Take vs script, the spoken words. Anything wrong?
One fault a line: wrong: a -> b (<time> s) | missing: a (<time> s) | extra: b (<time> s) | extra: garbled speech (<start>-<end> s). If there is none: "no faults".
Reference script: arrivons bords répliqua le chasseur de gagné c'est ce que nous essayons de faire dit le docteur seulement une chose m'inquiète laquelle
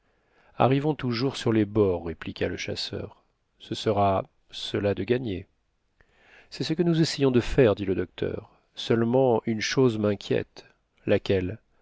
extra: toujours sur les (0.9 s)
extra: ce sera cela (3.6 s)